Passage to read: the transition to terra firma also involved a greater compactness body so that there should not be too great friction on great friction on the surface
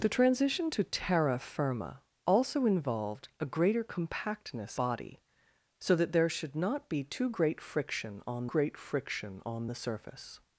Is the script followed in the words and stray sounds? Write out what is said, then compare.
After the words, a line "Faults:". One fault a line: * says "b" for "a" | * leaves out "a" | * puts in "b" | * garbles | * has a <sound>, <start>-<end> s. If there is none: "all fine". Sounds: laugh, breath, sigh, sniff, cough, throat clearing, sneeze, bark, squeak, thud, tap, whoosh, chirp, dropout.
the transition to terra firma also involved a greater compactness body so that there should not be too great friction on great friction on the surface
Faults:
all fine